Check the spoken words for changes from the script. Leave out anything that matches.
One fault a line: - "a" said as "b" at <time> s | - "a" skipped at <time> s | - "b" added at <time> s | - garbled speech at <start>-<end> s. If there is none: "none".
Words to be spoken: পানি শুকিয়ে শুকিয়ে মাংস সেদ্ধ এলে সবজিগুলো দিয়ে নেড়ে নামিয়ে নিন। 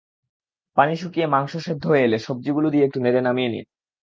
- "শুকিয়ে" skipped at 1.3 s
- "হয়ে" added at 1.9 s
- "একটু" added at 2.9 s